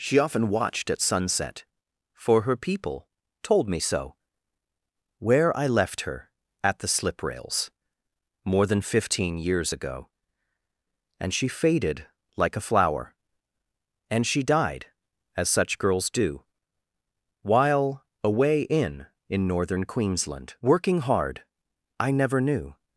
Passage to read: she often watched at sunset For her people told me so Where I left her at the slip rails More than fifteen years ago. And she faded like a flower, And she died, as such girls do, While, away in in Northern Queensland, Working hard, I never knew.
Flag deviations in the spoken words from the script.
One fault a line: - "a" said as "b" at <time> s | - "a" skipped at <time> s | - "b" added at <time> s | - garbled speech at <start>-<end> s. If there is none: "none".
none